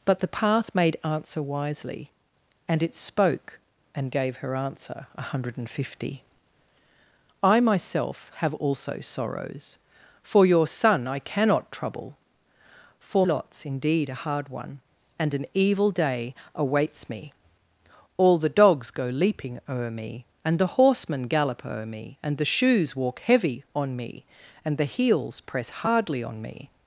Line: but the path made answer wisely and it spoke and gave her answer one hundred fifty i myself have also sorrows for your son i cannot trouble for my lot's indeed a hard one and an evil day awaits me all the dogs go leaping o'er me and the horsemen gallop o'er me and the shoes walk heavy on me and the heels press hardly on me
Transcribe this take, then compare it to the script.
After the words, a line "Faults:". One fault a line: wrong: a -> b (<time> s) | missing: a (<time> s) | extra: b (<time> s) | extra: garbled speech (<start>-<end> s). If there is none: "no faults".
but the path made answer wisely and it spoke and gave her answer one hundred fifty i myself have also sorrows for your son i cannot trouble for lot's indeed a hard one and an evil day awaits me all the dogs go leaping o'er me and the horsemen gallop o'er me and the shoes walk heavy on me and the heels press hardly on me
Faults:
missing: my (13.3 s)